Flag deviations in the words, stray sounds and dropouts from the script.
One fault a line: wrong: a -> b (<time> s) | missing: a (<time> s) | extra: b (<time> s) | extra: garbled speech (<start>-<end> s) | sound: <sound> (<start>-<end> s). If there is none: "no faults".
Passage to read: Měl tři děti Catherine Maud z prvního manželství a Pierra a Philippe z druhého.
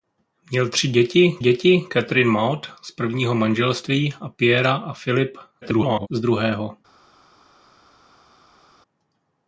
extra: děti (1.4 s)
extra: garbled speech (5.6-6.1 s)